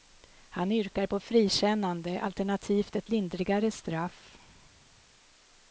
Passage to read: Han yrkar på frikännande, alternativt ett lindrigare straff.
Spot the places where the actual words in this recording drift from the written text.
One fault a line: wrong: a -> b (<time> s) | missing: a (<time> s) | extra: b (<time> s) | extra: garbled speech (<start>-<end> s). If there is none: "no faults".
no faults